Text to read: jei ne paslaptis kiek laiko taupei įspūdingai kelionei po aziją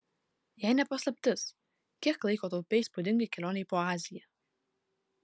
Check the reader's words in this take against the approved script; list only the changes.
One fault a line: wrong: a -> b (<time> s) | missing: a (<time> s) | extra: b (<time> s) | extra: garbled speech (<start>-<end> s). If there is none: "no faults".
no faults